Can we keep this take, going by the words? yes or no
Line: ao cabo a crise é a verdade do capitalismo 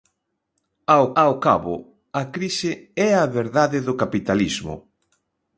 no